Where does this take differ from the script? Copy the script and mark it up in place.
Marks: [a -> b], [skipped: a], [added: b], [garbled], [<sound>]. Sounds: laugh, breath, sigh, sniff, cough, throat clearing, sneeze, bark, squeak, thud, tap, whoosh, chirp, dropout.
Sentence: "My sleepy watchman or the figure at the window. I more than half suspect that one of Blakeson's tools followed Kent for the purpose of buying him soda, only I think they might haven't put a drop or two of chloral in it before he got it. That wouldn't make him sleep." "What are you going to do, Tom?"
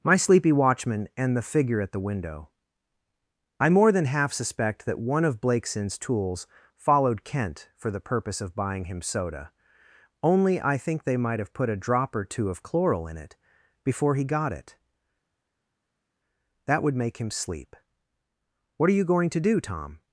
"My sleepy watchman [or -> and] the figure at the window. I more than half suspect that one of Blakeson's tools followed Kent for the purpose of buying him soda, only I think they might [haven't -> have] put a drop or two of chloral in it before he got it. That [wouldn't -> would] make him sleep." "What are you going to do, Tom?"